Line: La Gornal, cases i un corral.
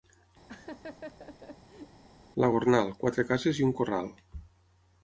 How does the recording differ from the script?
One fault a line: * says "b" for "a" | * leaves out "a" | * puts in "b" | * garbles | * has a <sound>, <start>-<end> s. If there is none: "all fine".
* has a laugh, 0.5-2.0 s
* puts in "quatre"